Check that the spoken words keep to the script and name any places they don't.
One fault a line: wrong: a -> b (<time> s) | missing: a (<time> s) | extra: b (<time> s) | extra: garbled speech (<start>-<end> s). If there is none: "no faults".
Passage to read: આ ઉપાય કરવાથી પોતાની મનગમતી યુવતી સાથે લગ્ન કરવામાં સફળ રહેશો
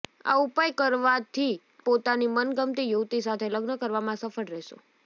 no faults